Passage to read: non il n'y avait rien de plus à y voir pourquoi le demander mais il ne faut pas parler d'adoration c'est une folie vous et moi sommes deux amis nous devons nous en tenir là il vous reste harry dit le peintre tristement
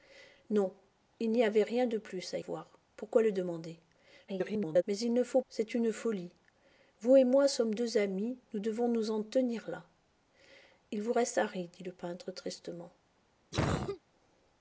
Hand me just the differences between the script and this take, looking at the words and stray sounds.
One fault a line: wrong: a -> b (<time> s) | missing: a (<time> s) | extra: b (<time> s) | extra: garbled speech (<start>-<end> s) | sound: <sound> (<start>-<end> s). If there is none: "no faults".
missing: y (2.4 s)
extra: garbled speech (4.3-4.8 s)
missing: pas parler d'adoration (5.4 s)
sound: cough (13.5-14.0 s)